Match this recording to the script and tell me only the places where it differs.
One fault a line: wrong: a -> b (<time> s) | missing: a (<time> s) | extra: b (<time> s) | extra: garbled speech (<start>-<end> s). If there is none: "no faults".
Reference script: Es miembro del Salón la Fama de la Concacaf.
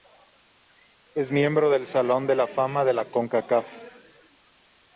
extra: de (2.2 s)